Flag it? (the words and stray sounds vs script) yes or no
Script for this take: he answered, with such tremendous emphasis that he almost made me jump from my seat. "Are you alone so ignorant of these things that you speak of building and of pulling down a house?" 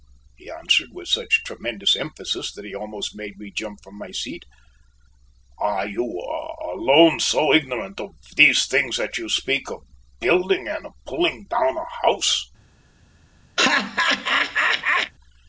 yes